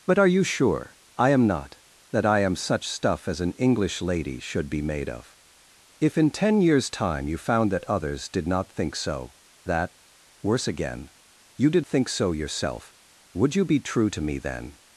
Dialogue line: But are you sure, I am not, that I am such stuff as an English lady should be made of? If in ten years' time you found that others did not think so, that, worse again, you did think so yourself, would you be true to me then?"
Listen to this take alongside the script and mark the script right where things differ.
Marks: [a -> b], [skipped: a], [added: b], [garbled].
But are you sure, I am not, that I am such stuff as an English lady should be made of? If in ten years' time you found that others did not think so, that, worse again, you did think so yourself, would you be true to me then?"